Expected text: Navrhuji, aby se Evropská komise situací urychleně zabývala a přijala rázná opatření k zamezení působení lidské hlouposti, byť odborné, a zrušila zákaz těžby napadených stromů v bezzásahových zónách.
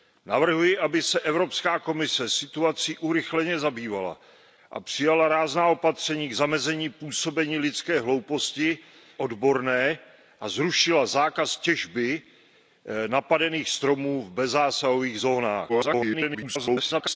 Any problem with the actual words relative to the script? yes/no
yes